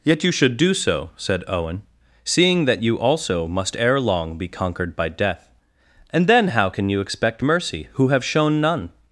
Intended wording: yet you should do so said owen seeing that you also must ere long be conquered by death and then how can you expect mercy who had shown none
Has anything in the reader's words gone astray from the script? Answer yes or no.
yes